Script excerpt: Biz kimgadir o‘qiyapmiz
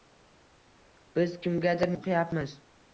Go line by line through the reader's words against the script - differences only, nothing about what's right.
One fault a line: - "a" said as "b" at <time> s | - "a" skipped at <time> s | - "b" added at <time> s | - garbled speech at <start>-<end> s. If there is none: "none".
none